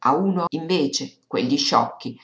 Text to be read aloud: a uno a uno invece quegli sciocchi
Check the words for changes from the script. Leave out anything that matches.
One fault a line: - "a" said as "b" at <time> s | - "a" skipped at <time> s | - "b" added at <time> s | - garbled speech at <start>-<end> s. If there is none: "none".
- "uno" skipped at 0.5 s